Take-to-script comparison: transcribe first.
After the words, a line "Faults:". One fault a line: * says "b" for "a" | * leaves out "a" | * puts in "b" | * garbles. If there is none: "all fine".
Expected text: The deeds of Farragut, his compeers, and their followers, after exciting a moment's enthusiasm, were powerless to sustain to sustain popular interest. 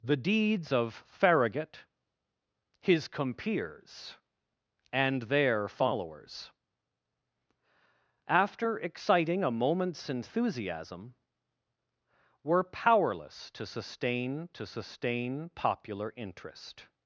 The deeds of Farragut, his compeers, and their followers, after exciting a moment's enthusiasm, were powerless to sustain to sustain popular interest.
Faults:
all fine